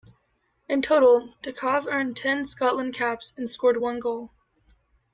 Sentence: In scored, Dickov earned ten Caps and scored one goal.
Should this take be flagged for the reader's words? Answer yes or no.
yes